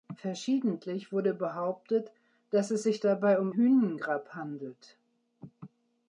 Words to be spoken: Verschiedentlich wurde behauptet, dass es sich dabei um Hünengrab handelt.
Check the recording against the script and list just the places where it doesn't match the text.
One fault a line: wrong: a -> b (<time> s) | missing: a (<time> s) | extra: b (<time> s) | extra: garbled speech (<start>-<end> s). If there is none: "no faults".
no faults